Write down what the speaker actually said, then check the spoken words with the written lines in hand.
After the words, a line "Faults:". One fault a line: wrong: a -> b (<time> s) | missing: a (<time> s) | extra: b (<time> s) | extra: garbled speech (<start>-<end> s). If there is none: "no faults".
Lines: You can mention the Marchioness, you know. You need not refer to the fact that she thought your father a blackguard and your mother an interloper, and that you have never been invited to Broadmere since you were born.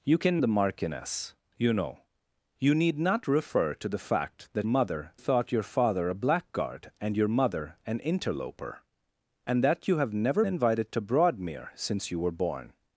You can the Marchioness, you know. You need not refer to the fact that mother thought your father a blackguard and your mother an interloper, and that you have never invited to Broadmere since you were born.
Faults:
missing: mention (0.4 s)
wrong: she -> mother (4.7 s)
missing: been (10.4 s)